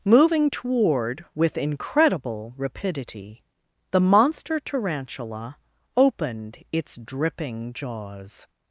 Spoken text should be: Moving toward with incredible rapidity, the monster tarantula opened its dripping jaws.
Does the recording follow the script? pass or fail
pass